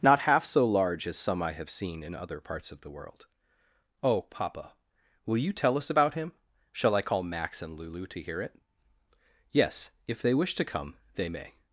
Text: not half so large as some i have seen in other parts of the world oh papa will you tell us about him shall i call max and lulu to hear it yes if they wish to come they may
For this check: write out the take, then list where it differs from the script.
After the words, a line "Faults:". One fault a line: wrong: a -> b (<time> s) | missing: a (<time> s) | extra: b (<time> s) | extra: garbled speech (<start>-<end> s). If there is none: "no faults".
not half so large as some i have seen in other parts of the world oh papa will you tell us about him shall i call max and lulu to hear it yes if they wish to come they may
Faults:
no faults